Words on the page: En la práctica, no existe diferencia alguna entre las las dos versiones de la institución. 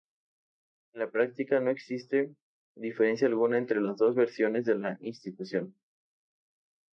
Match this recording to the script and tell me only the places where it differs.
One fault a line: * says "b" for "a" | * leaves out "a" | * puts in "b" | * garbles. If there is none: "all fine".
* leaves out "las"